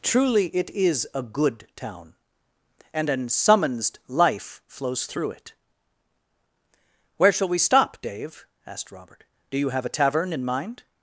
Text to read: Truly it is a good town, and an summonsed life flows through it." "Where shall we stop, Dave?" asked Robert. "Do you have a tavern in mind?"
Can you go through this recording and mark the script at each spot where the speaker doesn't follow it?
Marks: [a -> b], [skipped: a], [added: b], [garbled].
Truly it is a good town, and an summonsed life flows through it." "Where shall we stop, Dave?" asked Robert. "Do you have a tavern in mind?"